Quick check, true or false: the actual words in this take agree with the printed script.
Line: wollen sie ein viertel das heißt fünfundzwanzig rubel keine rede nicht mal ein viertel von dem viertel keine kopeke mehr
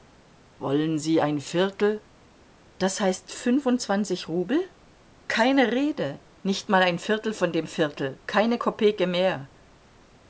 true